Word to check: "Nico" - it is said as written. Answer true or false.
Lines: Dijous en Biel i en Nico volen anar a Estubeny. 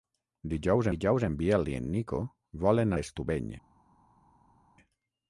true